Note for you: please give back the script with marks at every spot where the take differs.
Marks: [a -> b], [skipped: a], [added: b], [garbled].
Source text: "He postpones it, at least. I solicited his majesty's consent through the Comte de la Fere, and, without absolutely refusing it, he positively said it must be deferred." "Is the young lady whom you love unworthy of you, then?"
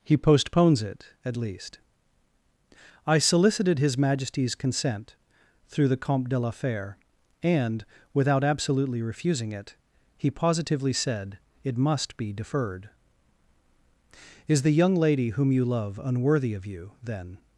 "He postpones it, at least. I solicited his majesty's consent through the Comte de la Fere, and, without absolutely refusing it, he positively said it must be deferred." "Is the young lady whom you love unworthy of you, then?"